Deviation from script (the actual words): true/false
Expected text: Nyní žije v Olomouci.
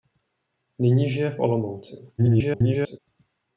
true